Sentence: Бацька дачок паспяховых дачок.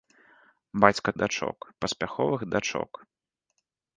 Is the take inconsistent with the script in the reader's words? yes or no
no